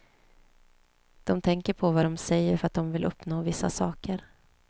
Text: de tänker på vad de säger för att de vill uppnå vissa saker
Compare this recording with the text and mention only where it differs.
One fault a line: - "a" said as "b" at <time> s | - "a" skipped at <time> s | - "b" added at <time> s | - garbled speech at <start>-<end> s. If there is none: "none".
none